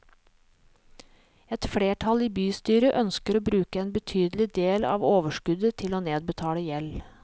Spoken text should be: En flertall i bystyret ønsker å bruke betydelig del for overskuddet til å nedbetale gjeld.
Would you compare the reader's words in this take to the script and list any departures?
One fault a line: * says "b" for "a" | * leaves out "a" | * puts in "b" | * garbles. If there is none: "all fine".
* says "Et" for "En"
* puts in "en"
* says "av" for "for"